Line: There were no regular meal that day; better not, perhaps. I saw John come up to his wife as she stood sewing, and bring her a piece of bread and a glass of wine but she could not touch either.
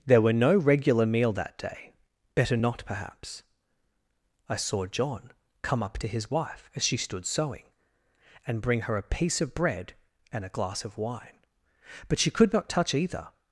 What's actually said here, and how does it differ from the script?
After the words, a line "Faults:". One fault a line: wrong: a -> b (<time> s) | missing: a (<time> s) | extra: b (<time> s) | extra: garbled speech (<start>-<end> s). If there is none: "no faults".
There were no regular meal that day; better not, perhaps. I saw John come up to his wife as she stood sewing, and bring her a piece of bread and a glass of wine but she could not touch either.
Faults:
no faults